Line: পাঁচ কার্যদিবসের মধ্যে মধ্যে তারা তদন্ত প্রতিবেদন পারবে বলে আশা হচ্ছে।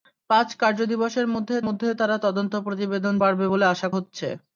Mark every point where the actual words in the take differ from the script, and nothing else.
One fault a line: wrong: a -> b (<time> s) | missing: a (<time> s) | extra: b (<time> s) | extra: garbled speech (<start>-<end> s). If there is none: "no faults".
no faults